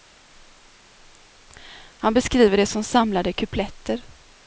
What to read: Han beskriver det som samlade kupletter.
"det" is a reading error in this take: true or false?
false